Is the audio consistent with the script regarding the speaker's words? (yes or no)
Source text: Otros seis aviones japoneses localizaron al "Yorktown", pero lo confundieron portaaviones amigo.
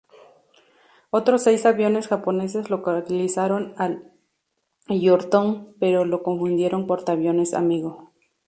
yes